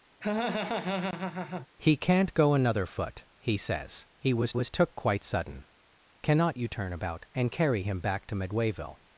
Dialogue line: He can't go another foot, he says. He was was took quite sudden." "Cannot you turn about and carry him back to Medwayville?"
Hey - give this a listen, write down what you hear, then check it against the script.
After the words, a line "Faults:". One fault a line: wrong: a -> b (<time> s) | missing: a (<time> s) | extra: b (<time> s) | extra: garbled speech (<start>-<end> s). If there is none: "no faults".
He can't go another foot, he says. He was was took quite sudden." "Cannot you turn about and carry him back to Medwayville?"
Faults:
no faults